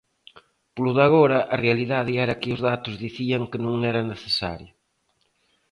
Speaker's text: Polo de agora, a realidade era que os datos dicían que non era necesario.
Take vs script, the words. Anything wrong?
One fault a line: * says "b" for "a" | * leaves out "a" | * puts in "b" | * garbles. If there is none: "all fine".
all fine